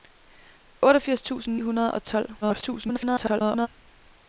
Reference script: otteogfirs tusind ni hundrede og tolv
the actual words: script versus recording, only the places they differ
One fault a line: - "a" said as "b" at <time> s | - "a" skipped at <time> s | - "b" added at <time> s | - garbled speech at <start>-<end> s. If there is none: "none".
- "ni" skipped at 1.6 s
- garbled speech at 2.4-3.7 s